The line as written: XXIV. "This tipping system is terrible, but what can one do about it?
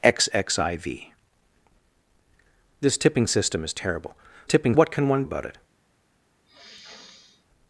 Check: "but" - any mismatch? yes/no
yes